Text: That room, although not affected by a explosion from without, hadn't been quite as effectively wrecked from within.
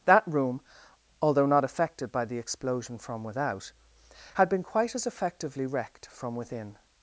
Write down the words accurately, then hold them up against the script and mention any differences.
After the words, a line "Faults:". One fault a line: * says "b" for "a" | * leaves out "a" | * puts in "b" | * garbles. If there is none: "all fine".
That room, although not affected by the explosion from without, had been quite as effectively wrecked from within.
Faults:
* says "the" for "a"
* says "had" for "hadn't"